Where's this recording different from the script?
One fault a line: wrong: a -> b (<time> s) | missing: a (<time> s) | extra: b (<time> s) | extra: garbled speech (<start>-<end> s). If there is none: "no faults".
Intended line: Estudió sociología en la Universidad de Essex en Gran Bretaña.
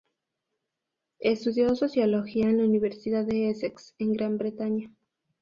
no faults